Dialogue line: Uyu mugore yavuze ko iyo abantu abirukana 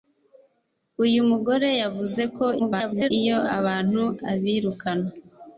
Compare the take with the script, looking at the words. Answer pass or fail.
fail